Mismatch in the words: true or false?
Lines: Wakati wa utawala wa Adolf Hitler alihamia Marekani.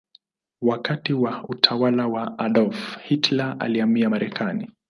false